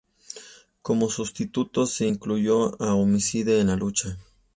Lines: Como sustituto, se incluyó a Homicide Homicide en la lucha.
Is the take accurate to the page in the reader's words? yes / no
no